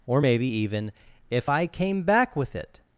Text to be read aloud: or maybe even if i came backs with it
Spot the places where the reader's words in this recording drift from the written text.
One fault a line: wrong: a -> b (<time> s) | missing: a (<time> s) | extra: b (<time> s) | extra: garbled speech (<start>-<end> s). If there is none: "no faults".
wrong: backs -> back (2.0 s)